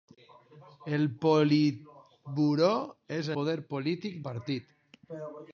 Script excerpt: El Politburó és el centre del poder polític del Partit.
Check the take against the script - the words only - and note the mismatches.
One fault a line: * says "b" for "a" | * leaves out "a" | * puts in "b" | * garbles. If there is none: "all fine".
* leaves out "el centre del"
* leaves out "del"